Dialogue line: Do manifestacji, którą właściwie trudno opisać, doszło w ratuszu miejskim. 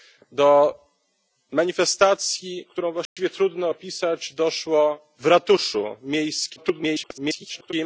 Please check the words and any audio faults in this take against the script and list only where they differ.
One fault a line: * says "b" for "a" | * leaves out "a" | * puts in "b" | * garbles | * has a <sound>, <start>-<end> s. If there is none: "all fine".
* has a dropout, 3.1-3.2 s
* garbles